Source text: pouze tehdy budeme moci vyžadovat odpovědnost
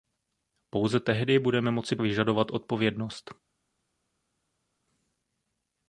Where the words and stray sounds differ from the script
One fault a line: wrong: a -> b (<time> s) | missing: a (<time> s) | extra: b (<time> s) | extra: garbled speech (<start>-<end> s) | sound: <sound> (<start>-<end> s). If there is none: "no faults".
no faults